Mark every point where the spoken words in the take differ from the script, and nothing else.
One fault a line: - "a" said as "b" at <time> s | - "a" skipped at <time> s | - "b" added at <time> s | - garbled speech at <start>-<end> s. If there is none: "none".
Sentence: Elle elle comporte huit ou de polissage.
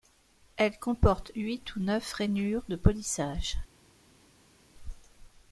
- "elle" skipped at 0.8 s
- "neuf rainures" added at 1.8 s